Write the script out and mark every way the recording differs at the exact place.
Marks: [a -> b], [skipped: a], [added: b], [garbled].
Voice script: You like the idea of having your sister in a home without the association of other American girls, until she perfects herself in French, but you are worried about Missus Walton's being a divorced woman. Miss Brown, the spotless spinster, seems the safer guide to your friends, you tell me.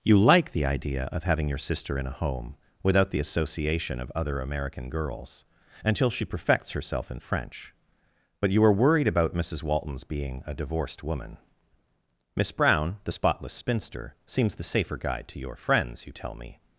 You like the idea of having your sister in a home without the association of other American girls, until she perfects herself in French, but you are worried about Missus Walton's being a divorced woman. Miss Brown, the spotless spinster, seems the safer guide to your friends, you tell me.